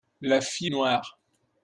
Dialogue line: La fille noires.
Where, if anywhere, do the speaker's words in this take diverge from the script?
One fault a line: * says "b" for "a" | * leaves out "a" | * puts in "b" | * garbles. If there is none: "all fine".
all fine